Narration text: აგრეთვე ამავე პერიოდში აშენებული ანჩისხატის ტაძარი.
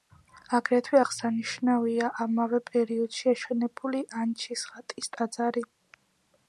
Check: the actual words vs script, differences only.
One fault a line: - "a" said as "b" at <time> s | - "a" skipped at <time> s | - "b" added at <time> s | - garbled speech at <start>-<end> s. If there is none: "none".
- "აღსანიშნავია" added at 1.0 s